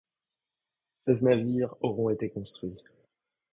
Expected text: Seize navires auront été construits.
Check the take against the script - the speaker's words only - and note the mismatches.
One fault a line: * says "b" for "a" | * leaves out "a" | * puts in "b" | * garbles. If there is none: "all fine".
all fine